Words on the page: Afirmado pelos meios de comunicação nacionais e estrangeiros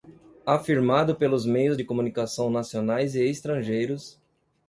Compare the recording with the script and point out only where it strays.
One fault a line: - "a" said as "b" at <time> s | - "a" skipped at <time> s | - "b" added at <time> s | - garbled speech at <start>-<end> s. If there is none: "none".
none